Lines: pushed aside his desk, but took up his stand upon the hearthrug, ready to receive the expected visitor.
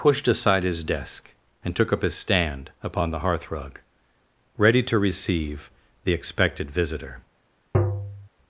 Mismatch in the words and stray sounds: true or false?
true